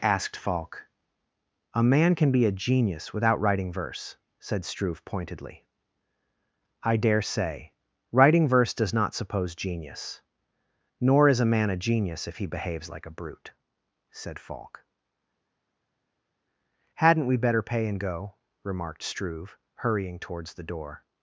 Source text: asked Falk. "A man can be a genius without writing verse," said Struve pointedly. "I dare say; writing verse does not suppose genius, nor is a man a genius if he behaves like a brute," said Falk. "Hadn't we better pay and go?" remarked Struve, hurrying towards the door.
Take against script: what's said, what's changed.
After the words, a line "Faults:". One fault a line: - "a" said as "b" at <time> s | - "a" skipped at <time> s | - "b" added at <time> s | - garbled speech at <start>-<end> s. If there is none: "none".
asked Falk. "A man can be a genius without writing verse," said Struve pointedly. "I dare say; writing verse does not suppose genius, nor is a man a genius if he behaves like a brute," said Falk. "Hadn't we better pay and go?" remarked Struve, hurrying towards the door.
Faults:
none